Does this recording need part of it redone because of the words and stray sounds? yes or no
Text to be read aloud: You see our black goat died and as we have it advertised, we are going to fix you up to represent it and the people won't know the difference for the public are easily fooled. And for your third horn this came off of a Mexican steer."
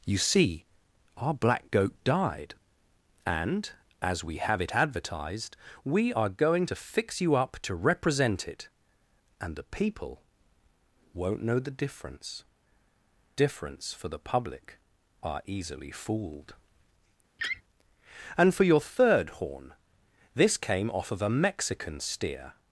yes